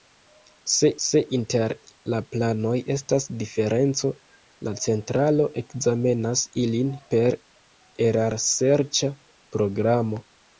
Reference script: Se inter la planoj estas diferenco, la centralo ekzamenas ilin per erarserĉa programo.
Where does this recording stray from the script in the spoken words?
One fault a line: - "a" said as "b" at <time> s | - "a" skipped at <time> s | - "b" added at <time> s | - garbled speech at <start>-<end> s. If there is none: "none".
- "se" added at 1.1 s